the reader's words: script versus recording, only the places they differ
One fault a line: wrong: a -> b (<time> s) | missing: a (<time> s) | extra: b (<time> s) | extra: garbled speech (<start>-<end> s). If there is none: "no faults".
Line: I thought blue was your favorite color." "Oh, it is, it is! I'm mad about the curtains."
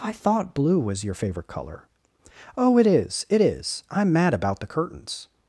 no faults